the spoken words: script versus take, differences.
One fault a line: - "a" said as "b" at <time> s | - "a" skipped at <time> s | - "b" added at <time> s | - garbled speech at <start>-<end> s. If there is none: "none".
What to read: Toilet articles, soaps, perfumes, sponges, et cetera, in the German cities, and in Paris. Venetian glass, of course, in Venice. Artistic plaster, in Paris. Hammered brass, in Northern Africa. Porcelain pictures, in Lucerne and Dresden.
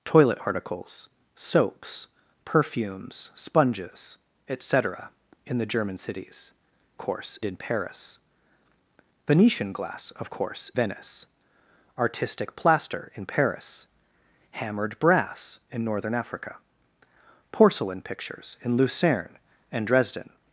- "and" said as "course" at 7.0 s
- "in" skipped at 10.7 s